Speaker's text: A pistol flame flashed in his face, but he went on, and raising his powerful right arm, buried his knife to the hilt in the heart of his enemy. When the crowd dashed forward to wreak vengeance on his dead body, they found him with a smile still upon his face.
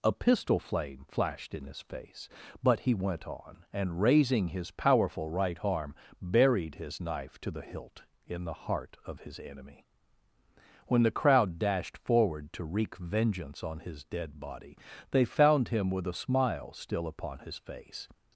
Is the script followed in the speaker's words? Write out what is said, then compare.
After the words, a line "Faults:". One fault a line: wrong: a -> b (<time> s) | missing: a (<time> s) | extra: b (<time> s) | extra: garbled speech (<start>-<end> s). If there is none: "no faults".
A pistol flame flashed in his face, but he went on, and raising his powerful right arm, buried his knife to the hilt in the heart of his enemy. When the crowd dashed forward to wreak vengeance on his dead body, they found him with a smile still upon his face.
Faults:
no faults